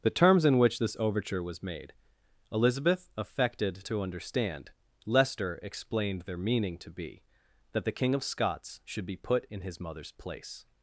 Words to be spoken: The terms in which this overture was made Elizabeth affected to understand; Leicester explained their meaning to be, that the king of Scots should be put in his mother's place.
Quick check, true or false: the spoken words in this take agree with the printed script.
true